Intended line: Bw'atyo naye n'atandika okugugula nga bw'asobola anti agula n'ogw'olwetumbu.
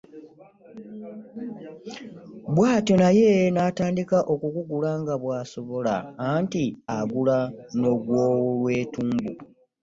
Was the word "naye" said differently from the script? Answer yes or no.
no